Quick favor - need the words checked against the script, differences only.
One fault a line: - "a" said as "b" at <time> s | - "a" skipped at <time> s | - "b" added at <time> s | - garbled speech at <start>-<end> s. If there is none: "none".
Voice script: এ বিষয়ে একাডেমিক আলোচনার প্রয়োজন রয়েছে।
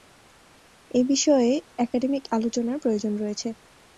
none